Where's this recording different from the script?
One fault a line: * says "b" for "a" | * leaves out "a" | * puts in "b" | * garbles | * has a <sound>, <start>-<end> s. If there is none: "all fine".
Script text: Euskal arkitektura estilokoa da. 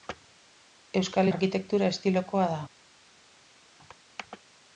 all fine